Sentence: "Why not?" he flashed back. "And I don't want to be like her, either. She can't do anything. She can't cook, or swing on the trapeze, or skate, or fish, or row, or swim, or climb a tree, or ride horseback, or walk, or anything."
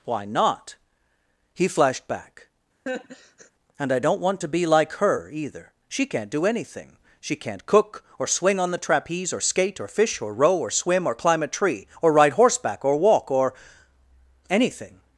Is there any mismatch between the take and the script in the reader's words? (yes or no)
no